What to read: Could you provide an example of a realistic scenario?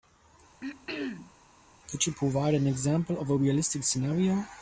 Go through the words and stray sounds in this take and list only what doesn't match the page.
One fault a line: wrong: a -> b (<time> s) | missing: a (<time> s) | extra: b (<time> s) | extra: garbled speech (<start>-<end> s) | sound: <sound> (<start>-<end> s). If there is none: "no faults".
sound: throat clearing (0.6-1.3 s)